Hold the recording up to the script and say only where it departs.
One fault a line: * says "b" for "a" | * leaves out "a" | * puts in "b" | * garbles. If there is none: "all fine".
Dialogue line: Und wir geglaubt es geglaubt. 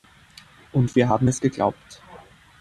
* says "haben" for "geglaubt"